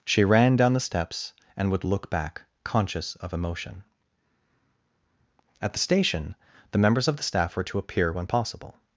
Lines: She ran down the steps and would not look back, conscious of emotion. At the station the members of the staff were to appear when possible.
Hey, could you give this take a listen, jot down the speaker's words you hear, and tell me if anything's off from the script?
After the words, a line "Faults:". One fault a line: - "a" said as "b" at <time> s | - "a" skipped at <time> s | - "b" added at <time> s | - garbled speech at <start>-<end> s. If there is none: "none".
She ran down the steps and would look back, conscious of emotion. At the station the members of the staff were to appear when possible.
Faults:
- "not" skipped at 1.8 s